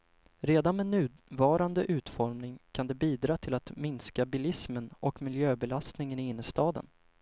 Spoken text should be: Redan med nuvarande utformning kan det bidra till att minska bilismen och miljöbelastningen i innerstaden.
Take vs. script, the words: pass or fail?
pass